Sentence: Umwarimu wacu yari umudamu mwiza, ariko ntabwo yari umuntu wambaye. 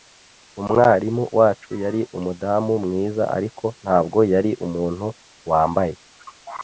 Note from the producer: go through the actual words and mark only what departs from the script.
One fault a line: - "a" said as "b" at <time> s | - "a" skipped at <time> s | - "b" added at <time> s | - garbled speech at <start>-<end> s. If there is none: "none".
none